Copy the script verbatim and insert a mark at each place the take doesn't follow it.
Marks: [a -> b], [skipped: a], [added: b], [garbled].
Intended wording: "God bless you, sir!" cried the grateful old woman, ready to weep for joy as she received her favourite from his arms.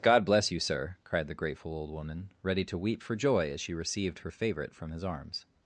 "God bless you, sir!" cried the grateful old woman, ready to weep for joy as she received her favourite from his arms.